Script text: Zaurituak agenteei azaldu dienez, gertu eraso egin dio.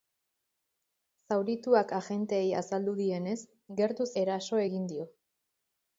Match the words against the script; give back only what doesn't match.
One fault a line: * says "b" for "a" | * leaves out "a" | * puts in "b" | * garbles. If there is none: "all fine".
all fine